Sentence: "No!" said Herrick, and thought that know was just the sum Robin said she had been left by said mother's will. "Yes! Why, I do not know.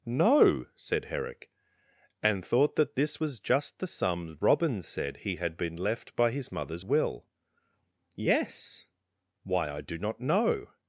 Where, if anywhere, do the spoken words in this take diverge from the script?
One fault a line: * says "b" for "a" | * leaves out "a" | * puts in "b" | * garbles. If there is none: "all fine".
* says "this" for "know"
* says "he" for "she"
* says "his" for "said"